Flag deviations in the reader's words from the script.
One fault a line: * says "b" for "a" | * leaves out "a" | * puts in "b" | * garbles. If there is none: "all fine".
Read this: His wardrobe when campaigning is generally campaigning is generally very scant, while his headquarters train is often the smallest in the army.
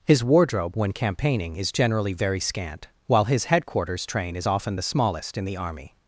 * leaves out "campaigning is generally"